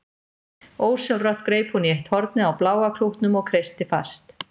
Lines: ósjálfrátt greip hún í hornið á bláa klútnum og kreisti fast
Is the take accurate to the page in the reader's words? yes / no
no